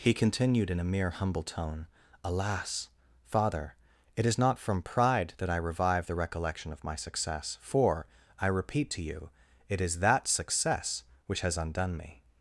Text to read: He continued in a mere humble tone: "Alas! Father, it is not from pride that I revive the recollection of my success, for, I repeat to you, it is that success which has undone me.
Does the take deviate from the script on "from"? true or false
false